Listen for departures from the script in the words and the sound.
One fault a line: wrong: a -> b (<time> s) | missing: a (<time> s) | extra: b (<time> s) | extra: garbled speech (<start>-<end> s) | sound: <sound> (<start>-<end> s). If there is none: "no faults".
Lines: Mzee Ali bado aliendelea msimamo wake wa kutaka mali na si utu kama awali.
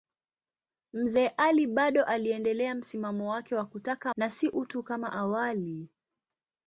missing: mali (4.1 s)